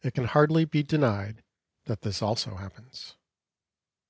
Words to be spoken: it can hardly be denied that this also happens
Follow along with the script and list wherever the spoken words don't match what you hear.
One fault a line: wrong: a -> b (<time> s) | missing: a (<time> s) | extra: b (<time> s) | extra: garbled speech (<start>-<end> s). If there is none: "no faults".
no faults